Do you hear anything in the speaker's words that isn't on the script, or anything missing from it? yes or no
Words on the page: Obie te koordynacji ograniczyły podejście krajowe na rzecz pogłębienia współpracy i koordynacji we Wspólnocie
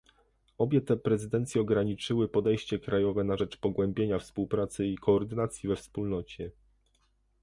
yes